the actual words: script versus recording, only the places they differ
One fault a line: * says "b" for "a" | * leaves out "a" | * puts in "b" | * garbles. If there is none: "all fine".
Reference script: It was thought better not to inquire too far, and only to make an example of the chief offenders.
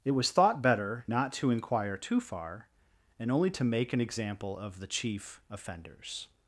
all fine